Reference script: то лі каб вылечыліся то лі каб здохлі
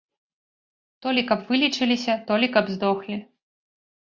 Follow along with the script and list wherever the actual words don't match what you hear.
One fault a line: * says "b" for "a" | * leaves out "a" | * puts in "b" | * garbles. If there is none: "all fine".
all fine